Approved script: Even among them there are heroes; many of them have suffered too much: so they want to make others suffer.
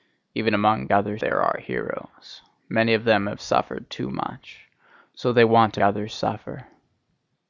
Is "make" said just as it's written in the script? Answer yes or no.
no